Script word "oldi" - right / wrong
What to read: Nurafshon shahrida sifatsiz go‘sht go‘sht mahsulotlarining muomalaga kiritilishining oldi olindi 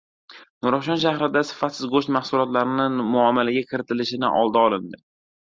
right